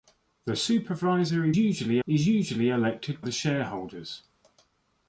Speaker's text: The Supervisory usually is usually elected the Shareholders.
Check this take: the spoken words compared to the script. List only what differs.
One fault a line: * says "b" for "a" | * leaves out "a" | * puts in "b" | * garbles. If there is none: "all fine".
all fine